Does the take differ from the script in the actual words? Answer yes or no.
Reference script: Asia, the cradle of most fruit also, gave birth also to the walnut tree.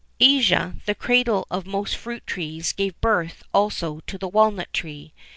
yes